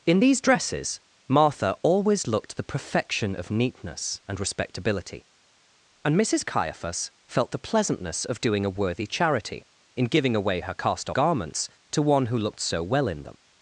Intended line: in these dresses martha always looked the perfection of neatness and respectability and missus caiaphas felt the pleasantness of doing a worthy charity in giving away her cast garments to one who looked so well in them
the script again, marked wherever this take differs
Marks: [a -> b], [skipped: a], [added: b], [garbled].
in these dresses martha always looked the perfection of neatness and respectability and missus caiaphas felt the pleasantness of doing a worthy charity in giving away her cast garments to one who looked so well in them